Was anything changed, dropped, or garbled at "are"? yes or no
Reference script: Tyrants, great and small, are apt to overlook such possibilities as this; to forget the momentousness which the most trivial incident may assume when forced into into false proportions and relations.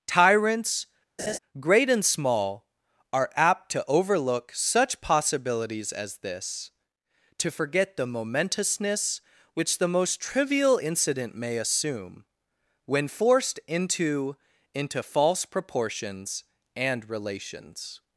no